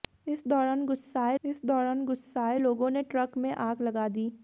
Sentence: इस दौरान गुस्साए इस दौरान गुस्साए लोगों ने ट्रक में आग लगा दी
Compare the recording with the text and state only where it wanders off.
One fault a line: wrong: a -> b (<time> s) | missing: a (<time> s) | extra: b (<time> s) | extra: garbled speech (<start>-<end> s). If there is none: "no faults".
no faults